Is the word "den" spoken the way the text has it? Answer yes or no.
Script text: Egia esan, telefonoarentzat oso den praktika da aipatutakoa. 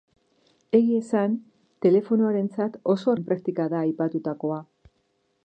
yes